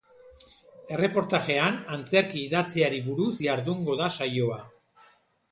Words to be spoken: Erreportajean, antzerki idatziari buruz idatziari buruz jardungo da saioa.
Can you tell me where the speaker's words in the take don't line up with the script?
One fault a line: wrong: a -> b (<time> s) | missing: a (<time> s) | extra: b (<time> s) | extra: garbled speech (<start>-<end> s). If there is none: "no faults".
missing: idatziari buruz (3.3 s)